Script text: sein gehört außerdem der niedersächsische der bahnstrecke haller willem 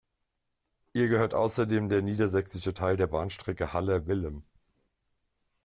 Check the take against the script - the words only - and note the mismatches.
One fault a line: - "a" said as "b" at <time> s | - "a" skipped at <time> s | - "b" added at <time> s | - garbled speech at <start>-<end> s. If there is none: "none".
- "sein" said as "ihr" at 0.9 s
- "teil" added at 2.7 s